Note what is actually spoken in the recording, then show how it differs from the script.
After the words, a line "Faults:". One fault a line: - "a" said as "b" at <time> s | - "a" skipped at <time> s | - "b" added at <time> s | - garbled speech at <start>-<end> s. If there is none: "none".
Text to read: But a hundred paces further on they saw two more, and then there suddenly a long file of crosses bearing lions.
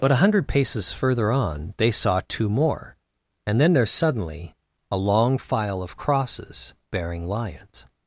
But a hundred paces further on they saw two more, and then there suddenly a long file of crosses bearing lions.
Faults:
none